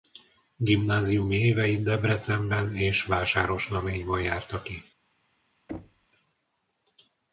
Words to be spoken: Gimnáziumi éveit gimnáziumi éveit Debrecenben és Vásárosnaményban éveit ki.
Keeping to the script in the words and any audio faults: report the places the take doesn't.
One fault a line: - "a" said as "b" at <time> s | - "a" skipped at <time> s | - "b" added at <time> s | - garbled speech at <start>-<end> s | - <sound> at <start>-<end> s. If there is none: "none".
- "gimnáziumi éveit" skipped at 1.8 s
- "éveit" said as "járta" at 4.2 s
- thud at 5.7-6.1 s